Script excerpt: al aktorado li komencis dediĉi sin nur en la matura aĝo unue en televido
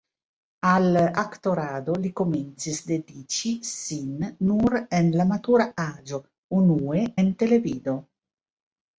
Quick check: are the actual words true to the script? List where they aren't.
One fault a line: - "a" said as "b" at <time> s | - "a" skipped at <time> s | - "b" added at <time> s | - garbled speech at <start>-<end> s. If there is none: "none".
none